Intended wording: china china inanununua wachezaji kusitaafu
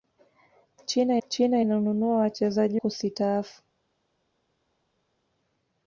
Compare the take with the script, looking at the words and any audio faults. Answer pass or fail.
pass